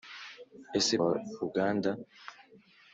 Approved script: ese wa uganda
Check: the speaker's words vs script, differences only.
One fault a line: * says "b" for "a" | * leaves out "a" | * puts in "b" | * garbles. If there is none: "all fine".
all fine